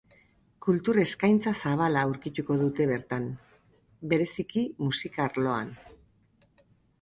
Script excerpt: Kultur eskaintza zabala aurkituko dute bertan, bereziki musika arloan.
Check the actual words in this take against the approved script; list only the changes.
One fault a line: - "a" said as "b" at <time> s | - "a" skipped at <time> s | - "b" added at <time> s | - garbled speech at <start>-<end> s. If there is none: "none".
none